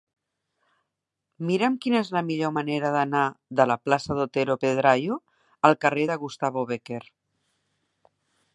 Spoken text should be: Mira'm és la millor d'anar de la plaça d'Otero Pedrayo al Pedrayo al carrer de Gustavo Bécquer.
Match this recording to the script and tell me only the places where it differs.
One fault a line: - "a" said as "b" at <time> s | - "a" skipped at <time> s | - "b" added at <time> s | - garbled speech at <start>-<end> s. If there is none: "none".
- "quina" added at 1.8 s
- "manera" added at 2.6 s
- "Pedrayo al" skipped at 5.8 s